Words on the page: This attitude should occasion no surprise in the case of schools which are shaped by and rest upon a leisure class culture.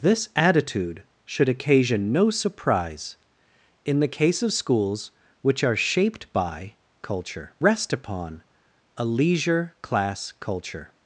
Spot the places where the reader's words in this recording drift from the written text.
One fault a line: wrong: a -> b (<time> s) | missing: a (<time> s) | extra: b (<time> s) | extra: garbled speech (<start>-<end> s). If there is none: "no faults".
wrong: and -> culture (7.0 s)